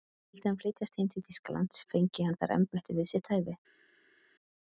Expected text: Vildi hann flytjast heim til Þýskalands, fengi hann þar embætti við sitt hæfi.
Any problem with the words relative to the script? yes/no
no